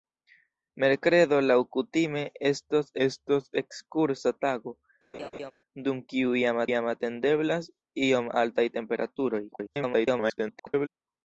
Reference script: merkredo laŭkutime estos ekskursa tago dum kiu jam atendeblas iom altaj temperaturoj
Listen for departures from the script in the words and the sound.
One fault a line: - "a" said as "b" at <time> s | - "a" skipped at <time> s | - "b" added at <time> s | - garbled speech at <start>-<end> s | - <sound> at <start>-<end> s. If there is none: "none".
- "estos" added at 3.1 s
- laugh at 5.1-5.5 s
- "jam" added at 6.7 s
- garbled speech at 9.5-10.9 s